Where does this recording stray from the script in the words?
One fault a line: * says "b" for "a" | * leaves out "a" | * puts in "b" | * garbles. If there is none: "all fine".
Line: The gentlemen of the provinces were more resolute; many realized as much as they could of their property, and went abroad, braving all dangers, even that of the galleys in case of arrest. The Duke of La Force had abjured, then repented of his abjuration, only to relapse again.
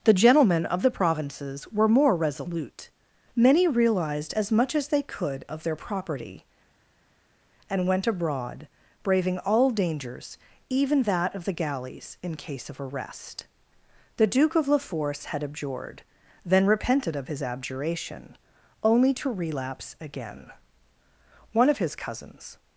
* puts in "One of his cousins"